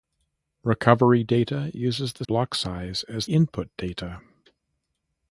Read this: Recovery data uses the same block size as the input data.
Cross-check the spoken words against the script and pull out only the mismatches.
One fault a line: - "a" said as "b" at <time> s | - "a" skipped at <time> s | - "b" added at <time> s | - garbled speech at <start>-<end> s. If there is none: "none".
- "same" skipped at 2.2 s
- "the" skipped at 3.3 s